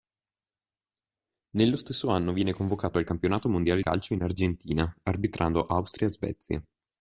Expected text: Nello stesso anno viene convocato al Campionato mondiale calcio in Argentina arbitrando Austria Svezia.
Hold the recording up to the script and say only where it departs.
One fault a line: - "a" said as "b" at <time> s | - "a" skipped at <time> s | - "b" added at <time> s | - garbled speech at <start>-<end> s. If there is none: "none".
none